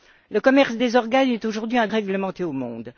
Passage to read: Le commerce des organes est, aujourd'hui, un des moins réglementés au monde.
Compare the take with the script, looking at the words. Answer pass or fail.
fail